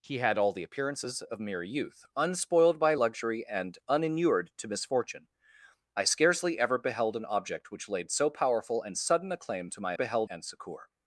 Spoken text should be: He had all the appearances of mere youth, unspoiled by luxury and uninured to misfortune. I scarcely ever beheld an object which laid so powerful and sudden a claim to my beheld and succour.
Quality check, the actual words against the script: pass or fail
pass